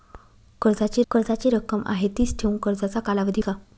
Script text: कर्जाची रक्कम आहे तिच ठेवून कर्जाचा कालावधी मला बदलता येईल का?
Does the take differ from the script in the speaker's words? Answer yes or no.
yes